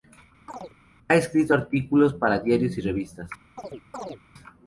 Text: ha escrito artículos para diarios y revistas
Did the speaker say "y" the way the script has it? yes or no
yes